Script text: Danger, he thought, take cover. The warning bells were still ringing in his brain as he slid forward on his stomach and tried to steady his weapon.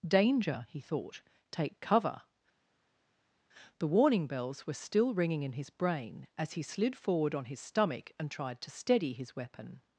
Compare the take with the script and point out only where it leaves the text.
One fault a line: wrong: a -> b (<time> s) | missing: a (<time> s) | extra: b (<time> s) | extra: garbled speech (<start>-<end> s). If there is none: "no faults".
no faults